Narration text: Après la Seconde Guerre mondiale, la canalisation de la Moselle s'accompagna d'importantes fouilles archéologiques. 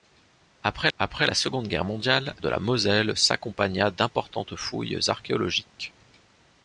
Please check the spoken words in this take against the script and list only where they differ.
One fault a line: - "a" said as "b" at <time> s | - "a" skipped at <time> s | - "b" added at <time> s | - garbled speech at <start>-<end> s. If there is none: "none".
- "après" added at 1.0 s
- "la canalisation" skipped at 2.3 s